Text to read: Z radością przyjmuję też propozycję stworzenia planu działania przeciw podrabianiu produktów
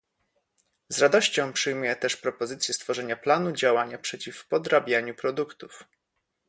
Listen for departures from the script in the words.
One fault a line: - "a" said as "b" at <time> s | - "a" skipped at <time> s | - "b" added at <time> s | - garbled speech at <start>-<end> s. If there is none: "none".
none